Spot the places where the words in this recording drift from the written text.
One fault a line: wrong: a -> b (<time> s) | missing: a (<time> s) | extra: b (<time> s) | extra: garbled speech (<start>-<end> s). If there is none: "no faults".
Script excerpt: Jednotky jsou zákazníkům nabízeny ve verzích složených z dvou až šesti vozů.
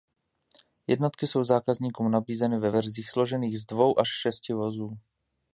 no faults